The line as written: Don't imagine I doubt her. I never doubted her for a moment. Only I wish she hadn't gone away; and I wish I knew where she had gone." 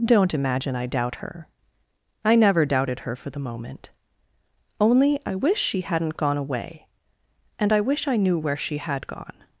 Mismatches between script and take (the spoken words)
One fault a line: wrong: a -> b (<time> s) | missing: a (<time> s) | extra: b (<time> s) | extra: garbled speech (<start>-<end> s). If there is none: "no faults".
wrong: a -> the (3.3 s)